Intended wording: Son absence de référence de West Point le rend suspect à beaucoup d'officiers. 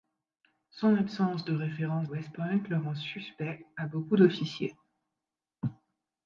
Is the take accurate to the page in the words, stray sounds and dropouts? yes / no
no